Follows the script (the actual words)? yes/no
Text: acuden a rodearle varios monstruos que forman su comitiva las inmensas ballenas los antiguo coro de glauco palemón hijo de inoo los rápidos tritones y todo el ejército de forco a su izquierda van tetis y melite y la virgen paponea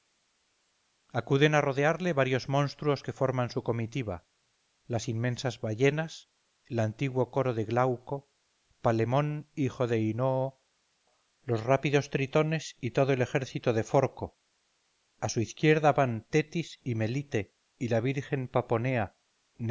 no